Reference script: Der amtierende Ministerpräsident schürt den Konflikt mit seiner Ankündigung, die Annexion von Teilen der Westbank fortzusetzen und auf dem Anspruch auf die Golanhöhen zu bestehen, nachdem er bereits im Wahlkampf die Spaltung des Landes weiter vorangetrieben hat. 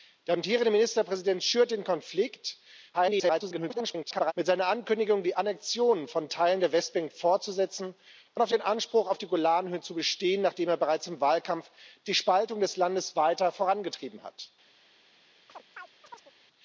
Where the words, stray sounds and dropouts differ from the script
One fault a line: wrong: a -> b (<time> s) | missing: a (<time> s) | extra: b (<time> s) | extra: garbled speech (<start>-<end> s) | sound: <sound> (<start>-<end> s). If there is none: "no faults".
extra: garbled speech (2.9-4.3 s)
sound: chirp (15.5-16.3 s)